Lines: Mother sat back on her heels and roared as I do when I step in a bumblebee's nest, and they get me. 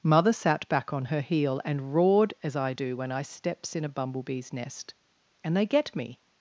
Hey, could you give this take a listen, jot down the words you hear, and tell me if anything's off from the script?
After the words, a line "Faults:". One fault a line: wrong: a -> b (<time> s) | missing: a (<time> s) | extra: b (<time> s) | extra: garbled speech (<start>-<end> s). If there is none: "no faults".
Mother sat back on her heel and roared as I do when I steps in a bumblebee's nest, and they get me.
Faults:
wrong: heels -> heel (1.2 s)
wrong: step -> steps (3.2 s)